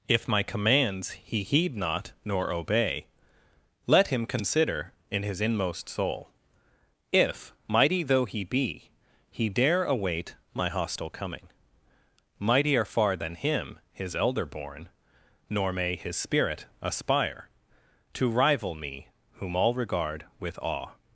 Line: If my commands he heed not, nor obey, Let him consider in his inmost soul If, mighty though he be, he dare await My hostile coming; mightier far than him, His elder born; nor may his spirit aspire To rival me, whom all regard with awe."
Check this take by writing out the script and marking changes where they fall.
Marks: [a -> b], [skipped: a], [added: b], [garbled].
If my commands he heed not, nor obey, Let him consider in his inmost soul If, mighty though he be, he dare await My hostile coming; mightier far than him, His elder born; nor may his spirit aspire To rival me, whom all regard with awe."